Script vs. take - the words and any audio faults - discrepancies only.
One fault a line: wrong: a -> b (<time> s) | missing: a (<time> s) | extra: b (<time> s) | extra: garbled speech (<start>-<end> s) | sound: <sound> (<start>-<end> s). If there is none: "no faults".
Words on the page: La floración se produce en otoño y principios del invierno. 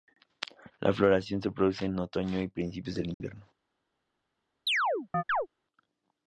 sound: dropout (3.1-3.2 s)
sound: chirp (4.7-5.5 s)